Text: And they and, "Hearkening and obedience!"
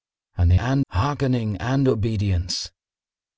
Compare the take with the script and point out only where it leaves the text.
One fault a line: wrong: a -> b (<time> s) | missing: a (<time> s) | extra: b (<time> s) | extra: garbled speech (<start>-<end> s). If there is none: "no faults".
no faults